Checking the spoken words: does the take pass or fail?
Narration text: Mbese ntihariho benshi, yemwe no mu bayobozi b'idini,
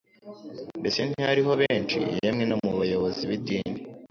pass